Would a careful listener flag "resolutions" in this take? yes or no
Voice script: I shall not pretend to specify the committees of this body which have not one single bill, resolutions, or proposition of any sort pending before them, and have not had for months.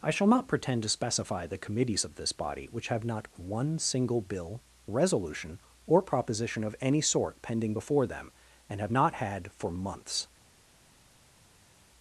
yes